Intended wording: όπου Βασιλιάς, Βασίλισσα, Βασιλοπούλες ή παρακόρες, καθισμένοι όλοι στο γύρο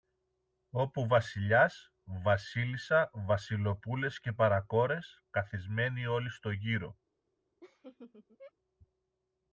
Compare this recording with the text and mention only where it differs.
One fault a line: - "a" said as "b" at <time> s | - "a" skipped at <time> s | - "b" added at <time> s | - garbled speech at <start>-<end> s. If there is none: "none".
- "ή" said as "και" at 4.2 s